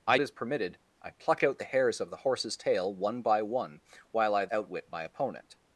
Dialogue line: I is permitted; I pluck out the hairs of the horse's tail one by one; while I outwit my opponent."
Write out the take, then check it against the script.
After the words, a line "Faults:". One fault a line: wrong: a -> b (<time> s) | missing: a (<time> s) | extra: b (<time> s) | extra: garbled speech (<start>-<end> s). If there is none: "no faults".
I is permitted; I pluck out the hairs of the horse's tail one by one; while I outwit my opponent."
Faults:
no faults